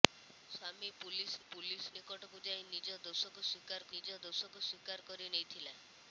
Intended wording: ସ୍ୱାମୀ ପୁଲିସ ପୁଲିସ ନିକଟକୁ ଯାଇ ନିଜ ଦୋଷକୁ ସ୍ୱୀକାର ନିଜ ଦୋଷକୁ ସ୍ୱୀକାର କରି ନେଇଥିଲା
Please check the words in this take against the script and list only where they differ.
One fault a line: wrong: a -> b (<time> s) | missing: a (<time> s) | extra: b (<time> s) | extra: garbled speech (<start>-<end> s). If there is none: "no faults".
no faults